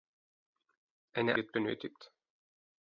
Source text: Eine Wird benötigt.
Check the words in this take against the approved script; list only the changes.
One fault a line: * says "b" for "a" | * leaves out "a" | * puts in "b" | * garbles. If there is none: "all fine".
all fine